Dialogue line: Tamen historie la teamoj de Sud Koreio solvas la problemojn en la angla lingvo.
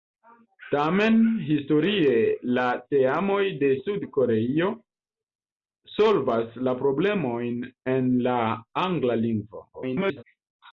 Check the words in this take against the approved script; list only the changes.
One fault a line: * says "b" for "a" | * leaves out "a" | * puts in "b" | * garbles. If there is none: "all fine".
* garbles